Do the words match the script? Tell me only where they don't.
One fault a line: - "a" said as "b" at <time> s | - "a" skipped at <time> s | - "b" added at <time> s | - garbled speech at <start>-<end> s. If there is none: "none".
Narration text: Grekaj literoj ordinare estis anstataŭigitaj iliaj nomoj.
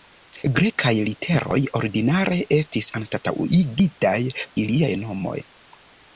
none